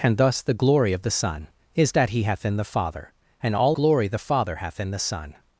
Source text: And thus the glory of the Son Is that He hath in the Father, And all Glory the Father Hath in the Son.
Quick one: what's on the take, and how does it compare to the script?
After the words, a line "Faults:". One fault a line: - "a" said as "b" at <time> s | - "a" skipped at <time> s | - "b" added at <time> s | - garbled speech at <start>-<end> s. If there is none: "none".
And thus the glory of the Son Is that He hath in the Father, And all Glory the Father Hath in the Son.
Faults:
none